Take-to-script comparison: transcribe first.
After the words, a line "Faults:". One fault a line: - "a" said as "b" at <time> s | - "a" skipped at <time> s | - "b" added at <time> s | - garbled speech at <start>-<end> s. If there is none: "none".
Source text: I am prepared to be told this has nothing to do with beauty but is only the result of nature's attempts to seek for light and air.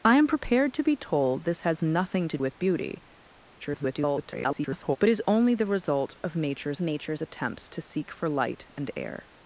I am prepared to be told this has nothing to with beauty [garbled] but is only the result of nature's nature's attempts to seek for light and air.
Faults:
- "do" skipped at 2.4 s
- garbled speech at 3.6-5.0 s
- "nature's" added at 6.8 s